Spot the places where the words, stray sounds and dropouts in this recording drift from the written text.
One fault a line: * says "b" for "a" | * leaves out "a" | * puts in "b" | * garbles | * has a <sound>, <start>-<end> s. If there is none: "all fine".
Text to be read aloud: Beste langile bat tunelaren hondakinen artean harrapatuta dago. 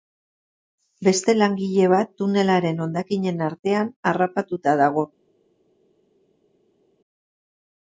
all fine